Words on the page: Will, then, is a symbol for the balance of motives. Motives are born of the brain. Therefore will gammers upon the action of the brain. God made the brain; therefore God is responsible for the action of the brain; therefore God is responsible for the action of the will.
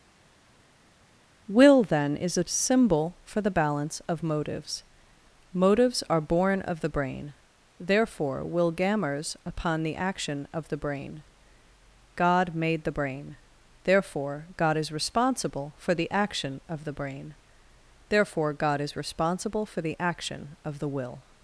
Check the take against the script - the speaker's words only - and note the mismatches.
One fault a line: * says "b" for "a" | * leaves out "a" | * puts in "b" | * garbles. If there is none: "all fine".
all fine